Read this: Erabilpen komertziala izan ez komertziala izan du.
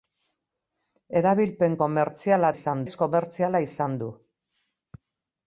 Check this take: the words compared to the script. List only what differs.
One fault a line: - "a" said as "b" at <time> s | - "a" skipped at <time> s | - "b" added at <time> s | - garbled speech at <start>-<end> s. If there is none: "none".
none